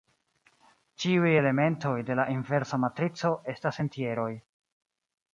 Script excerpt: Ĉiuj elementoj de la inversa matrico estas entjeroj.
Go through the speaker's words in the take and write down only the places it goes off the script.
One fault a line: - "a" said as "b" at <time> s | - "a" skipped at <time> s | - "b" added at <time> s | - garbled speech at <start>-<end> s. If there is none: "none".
none